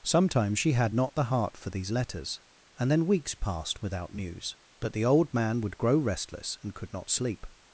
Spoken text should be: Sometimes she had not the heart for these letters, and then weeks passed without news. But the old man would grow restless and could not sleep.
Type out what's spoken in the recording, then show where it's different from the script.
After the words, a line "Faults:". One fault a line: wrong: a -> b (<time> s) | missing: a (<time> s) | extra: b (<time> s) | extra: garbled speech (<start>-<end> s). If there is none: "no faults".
Sometimes she had not the heart for these letters, and then weeks passed without news. But the old man would grow restless and could not sleep.
Faults:
no faults